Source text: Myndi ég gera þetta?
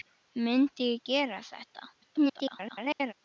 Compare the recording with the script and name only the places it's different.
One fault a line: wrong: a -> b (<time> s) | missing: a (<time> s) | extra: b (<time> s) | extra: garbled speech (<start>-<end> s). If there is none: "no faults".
extra: garbled speech (2.0-3.1 s)